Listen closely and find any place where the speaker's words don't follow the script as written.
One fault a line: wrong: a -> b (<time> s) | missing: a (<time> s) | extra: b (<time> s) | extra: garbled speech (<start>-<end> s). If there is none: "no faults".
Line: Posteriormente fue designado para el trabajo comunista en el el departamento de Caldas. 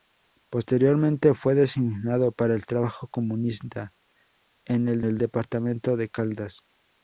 no faults